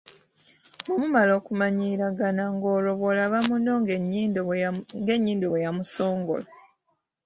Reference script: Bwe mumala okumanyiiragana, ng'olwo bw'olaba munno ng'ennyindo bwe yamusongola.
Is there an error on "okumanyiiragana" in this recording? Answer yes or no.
no